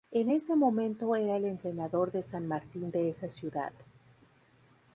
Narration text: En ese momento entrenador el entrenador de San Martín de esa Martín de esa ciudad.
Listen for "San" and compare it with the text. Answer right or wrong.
right